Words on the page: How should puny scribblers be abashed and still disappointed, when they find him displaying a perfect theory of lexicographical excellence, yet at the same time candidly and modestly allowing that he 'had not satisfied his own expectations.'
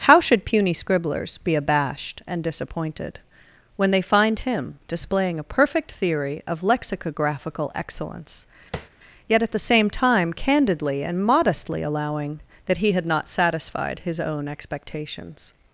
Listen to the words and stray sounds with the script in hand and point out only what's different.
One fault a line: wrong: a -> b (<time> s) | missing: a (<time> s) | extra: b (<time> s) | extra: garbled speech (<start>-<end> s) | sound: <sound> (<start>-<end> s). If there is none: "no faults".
missing: still (2.4 s)
sound: tap (8.7-8.9 s)